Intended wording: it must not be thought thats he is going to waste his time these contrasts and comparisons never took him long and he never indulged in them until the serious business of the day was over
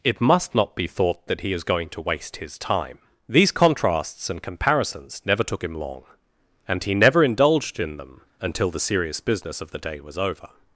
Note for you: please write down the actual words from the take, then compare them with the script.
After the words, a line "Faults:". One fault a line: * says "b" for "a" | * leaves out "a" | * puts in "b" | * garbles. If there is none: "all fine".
it must not be thought that he is going to waste his time these contrasts and comparisons never took him long and he never indulged in them until the serious business of the day was over
Faults:
* says "that" for "thats"